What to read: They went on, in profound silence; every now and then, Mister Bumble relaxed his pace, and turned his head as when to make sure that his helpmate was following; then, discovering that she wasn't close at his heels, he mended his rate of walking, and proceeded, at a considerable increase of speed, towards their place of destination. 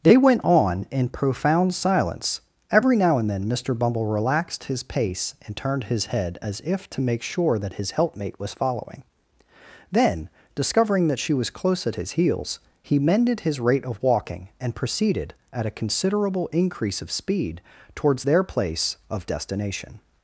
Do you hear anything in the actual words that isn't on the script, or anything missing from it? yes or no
yes